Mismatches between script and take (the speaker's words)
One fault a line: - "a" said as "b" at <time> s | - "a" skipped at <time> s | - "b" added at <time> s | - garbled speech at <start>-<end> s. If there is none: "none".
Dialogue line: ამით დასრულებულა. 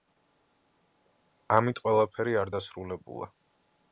- "ყველაფერი არ" added at 1.8 s